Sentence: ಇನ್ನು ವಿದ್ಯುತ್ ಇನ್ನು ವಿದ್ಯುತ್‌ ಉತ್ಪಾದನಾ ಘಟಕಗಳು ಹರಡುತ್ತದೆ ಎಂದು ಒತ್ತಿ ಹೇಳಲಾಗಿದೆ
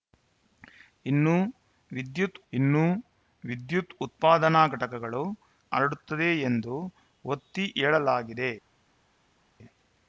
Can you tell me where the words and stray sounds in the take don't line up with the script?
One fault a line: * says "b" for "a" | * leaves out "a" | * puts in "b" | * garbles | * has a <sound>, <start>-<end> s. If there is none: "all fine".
all fine